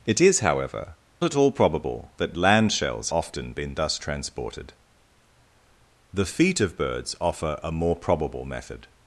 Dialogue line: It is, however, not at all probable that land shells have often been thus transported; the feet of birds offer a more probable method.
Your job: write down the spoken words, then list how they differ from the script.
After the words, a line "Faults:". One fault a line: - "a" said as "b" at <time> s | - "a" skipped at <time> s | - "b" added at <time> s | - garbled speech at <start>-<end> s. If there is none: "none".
It is, however, at all probable that land shells often been thus transported; the feet of birds offer a more probable method.
Faults:
- "not" skipped at 0.9 s
- "have" skipped at 3.1 s